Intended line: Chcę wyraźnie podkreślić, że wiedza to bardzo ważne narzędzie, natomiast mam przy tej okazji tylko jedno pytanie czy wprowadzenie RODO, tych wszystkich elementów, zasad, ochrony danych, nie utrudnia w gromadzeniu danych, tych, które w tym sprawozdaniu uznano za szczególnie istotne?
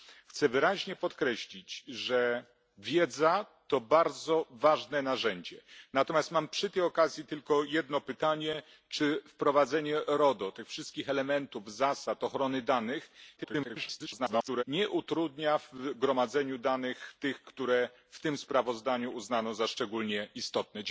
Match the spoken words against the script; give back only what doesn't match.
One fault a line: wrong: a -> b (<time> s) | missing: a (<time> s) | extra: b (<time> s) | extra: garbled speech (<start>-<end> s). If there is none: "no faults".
extra: garbled speech (13.4-14.6 s)